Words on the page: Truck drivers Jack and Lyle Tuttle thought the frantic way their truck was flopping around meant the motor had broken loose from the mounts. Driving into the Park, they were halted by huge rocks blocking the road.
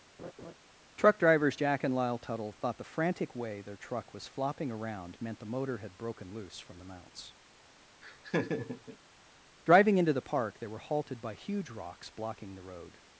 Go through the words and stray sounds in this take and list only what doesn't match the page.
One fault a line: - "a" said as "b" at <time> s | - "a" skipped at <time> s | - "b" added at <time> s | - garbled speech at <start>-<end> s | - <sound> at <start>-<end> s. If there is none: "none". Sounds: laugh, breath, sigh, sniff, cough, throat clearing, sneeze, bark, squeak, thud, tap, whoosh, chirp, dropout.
- laugh at 0.2-0.5 s
- laugh at 8.0-9.0 s